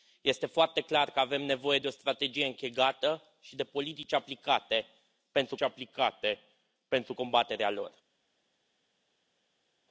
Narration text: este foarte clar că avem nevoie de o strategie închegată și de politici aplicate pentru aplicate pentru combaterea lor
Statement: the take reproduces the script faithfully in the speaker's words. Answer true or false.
true